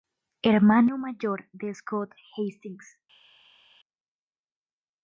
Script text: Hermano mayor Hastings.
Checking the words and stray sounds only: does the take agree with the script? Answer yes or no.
no